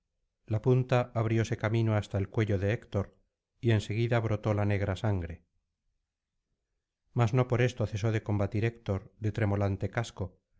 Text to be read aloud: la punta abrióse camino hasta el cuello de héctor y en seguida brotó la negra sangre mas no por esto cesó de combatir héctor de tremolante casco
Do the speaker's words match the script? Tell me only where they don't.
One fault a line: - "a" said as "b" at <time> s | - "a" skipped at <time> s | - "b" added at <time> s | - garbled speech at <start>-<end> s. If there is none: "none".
none